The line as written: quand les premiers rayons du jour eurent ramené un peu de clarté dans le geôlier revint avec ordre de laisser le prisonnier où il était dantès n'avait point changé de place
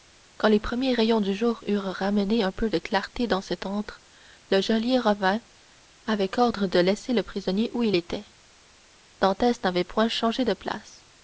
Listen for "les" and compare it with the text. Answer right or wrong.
right